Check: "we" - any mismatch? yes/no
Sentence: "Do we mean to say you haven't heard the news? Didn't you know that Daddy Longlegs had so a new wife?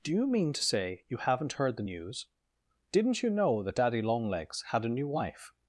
yes